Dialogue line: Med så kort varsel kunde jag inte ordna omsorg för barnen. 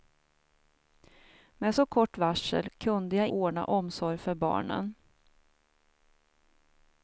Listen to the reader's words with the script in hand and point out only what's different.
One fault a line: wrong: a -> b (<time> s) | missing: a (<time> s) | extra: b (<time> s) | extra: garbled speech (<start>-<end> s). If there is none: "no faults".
missing: inte (3.3 s)